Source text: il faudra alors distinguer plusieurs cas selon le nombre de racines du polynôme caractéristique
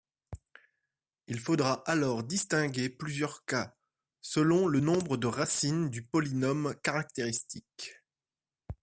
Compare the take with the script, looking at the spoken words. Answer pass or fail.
pass